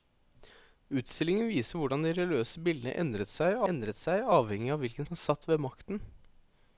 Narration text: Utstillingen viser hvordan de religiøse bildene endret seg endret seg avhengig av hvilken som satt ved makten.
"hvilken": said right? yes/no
yes